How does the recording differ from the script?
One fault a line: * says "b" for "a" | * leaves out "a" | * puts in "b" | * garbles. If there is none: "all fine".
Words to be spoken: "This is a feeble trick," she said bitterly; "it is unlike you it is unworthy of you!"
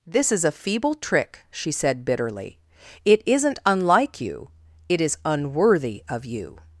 * says "isn't" for "is"